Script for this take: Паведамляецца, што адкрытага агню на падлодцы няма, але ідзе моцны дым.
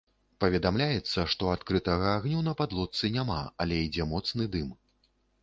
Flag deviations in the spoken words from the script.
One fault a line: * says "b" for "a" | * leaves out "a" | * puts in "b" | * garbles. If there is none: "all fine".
all fine